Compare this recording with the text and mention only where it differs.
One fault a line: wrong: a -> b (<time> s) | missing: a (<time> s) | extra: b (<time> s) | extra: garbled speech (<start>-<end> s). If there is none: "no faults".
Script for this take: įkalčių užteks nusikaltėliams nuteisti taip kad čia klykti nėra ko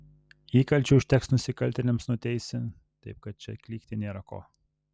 no faults